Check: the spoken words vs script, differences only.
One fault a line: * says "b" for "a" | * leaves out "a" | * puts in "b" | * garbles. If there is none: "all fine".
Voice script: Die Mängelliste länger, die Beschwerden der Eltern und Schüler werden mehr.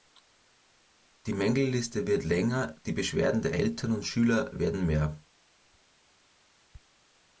* puts in "wird"